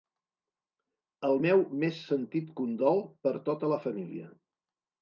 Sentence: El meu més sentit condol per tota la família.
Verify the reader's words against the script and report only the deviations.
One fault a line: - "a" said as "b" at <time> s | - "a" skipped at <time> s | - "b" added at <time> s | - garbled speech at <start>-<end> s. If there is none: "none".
none